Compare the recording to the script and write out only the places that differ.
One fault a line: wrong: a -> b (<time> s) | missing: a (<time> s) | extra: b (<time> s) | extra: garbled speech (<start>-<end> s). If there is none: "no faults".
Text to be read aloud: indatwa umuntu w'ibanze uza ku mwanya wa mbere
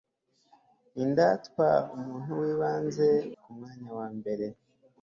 missing: uza (3.1 s)